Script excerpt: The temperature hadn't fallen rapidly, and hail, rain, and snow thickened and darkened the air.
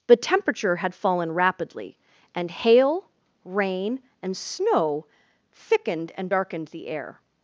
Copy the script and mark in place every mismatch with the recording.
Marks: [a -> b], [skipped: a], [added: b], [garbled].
The temperature [hadn't -> had] fallen rapidly, and hail, rain, and snow thickened and darkened the air.